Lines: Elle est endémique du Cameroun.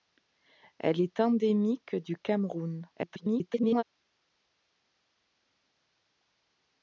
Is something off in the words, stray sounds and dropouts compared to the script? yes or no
yes